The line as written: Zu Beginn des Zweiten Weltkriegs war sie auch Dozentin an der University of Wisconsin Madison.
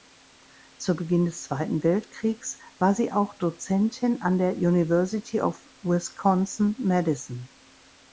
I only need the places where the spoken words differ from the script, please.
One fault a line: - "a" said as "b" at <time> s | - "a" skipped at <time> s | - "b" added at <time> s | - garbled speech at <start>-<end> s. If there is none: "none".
none